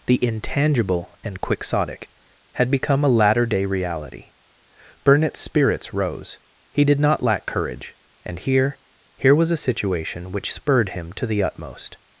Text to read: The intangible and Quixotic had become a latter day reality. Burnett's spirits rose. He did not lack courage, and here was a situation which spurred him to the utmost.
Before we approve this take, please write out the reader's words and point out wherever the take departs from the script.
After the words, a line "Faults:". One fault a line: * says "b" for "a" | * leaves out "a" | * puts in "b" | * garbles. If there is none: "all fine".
The intangible and Quixotic had become a latter day reality. Burnett's spirits rose. He did not lack courage, and here here was a situation which spurred him to the utmost.
Faults:
* puts in "here"